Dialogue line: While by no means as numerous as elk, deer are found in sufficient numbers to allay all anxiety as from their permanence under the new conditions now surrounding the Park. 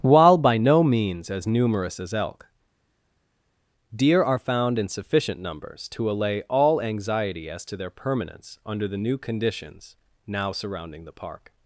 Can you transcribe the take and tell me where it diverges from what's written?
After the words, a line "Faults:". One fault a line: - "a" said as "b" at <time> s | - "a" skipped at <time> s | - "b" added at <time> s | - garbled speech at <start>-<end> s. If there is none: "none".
While by no means as numerous as elk, deer are found in sufficient numbers to allay all anxiety as to their permanence under the new conditions now surrounding the Park.
Faults:
- "from" said as "to" at 7.6 s